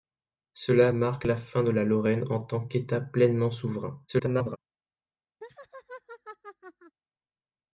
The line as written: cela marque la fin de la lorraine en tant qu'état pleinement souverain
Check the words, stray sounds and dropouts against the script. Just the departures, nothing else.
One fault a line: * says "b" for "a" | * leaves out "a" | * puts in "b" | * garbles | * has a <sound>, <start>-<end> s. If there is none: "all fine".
* garbles
* has a laugh, 5.4-7.0 s